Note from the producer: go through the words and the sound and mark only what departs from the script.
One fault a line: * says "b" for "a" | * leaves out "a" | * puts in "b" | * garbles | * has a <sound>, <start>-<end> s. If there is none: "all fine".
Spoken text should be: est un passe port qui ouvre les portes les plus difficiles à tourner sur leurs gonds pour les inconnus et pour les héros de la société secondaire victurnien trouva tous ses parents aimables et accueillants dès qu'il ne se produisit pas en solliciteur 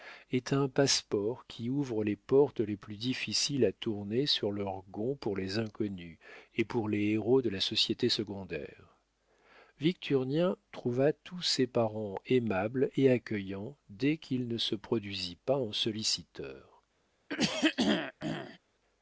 * has a throat clearing, 17.3-18.6 s